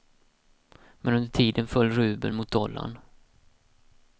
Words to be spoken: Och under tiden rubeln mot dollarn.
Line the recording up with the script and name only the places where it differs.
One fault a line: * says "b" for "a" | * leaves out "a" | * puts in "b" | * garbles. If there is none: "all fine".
* says "Men" for "Och"
* puts in "föll"